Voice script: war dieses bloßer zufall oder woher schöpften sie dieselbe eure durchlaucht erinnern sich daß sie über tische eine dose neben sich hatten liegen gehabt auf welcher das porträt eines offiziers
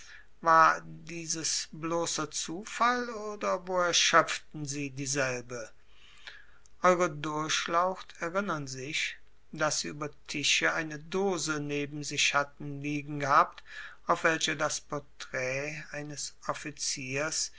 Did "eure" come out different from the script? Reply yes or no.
no